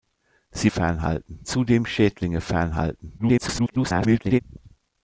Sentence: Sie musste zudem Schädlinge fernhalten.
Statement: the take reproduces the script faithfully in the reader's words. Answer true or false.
false